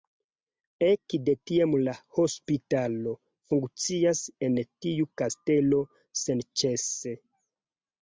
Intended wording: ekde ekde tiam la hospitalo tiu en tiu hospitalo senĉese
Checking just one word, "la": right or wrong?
right